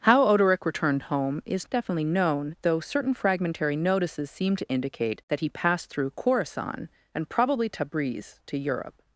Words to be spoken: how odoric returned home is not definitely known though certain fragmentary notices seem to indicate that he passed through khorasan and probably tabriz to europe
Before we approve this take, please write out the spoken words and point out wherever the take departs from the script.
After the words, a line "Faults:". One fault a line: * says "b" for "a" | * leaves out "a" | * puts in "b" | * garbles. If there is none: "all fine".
how odoric returned home is definitely known though certain fragmentary notices seem to indicate that he passed through khorasan and probably tabriz to europe
Faults:
* leaves out "not"